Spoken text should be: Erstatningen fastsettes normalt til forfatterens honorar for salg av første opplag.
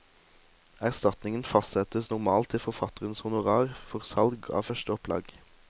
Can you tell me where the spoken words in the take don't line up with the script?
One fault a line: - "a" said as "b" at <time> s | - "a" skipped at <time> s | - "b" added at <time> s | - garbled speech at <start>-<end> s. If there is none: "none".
none